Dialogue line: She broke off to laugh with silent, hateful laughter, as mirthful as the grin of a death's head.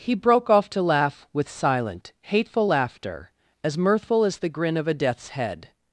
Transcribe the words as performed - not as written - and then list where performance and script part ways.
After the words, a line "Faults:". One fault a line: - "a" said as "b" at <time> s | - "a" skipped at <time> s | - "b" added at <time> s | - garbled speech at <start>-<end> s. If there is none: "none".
He broke off to laugh with silent, hateful laughter, as mirthful as the grin of a death's head.
Faults:
- "She" said as "He" at 0.0 s